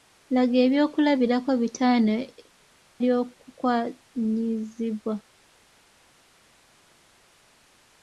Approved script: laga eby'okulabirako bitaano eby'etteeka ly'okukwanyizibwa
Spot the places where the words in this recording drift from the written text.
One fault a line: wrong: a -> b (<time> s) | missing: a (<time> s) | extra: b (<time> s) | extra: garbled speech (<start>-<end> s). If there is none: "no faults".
missing: eby'etteeka (2.1 s)